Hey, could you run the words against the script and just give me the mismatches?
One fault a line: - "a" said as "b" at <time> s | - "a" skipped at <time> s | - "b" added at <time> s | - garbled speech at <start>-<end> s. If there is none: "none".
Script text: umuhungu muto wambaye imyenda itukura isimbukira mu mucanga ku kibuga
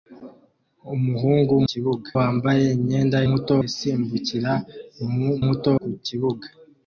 - "muto" said as "kibuga" at 1.7 s
- "itukura" said as "muto" at 3.3 s
- "mucanga" said as "muto" at 5.4 s